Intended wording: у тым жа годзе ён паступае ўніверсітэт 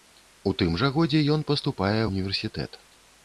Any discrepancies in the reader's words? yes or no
no